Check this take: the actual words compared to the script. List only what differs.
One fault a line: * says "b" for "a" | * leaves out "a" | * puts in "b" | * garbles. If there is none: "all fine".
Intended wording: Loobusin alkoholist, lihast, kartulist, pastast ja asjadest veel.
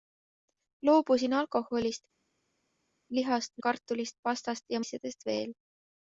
all fine